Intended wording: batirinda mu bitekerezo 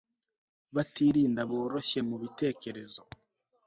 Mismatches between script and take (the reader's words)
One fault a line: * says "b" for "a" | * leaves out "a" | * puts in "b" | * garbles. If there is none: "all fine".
* puts in "boroshye"